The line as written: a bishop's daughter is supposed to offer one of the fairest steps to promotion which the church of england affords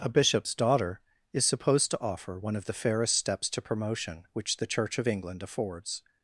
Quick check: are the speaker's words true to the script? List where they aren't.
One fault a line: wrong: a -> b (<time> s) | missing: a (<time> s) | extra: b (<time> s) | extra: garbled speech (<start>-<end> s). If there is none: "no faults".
no faults